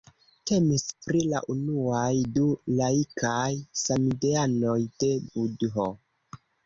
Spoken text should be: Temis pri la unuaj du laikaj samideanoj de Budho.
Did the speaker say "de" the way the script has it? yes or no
yes